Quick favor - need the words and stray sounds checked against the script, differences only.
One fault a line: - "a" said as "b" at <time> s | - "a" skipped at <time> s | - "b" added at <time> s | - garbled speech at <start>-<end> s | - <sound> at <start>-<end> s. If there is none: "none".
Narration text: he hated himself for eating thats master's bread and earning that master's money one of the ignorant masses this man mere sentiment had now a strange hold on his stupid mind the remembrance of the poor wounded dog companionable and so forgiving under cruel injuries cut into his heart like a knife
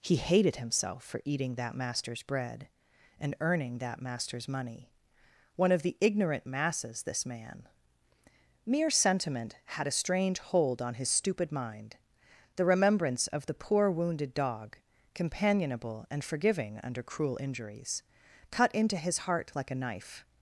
- "thats" said as "that" at 1.6 s
- "now" skipped at 9.9 s
- "so" skipped at 16.2 s